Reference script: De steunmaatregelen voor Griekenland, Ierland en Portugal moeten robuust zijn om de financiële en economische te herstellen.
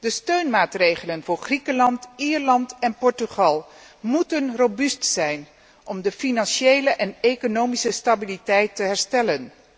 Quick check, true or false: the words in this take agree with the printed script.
false